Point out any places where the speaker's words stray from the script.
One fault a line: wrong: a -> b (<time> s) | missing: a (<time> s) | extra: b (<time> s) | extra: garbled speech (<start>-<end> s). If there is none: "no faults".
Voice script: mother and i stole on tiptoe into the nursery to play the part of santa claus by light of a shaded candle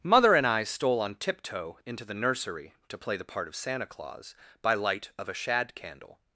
wrong: shaded -> shad (5.3 s)